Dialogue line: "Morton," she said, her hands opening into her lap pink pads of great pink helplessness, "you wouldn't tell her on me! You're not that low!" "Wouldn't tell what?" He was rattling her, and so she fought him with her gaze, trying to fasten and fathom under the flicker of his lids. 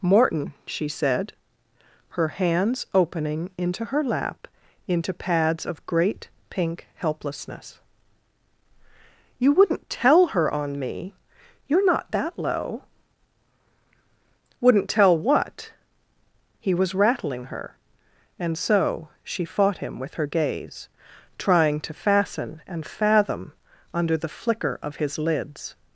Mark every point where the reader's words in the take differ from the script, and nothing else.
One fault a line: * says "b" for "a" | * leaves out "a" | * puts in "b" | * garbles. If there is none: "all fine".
* says "into" for "pink"